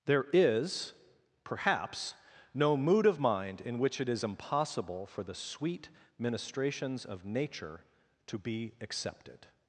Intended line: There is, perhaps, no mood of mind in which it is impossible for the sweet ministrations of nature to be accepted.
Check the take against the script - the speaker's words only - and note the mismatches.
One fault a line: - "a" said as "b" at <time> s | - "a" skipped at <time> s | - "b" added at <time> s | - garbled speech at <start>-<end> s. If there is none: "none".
none